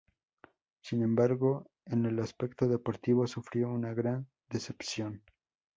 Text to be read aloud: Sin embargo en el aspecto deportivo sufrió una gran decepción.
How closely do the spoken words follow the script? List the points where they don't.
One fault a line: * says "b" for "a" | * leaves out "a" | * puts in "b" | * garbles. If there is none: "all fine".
all fine